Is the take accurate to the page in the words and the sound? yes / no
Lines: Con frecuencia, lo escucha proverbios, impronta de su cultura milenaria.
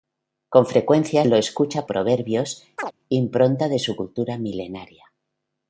no